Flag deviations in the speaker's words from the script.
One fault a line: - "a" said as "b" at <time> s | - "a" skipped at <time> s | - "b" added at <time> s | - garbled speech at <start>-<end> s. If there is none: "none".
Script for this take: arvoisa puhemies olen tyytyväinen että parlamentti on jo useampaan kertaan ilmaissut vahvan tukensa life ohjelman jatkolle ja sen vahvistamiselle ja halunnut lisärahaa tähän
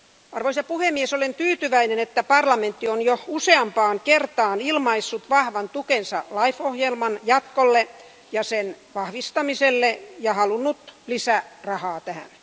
none